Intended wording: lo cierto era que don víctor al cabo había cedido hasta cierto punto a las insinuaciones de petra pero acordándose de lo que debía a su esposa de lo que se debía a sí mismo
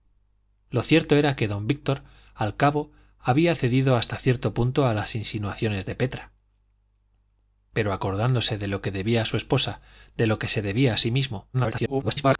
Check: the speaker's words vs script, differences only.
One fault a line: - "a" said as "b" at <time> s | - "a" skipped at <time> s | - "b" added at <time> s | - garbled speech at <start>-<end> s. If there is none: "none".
- garbled speech at 11.5-12.4 s